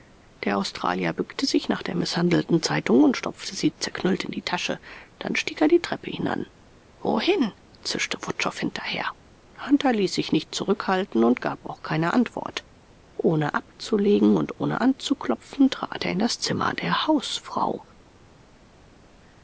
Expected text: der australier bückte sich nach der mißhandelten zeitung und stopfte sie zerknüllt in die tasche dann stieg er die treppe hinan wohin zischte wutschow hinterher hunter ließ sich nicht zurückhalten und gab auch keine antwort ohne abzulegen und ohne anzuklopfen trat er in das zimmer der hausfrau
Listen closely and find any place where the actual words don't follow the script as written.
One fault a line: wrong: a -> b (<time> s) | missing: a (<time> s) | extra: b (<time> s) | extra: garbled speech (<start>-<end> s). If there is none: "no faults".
no faults